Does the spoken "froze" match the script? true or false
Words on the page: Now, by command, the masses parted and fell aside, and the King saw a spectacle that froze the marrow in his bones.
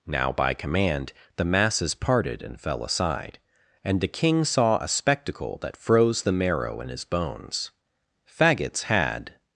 true